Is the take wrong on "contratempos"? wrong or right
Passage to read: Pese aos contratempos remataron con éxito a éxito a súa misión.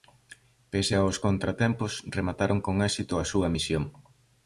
right